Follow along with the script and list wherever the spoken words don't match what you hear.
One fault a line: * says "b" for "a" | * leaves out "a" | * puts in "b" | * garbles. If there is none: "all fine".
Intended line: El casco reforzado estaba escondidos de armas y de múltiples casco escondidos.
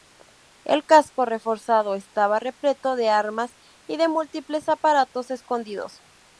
* says "repleto" for "escondidos"
* says "aparatos" for "casco"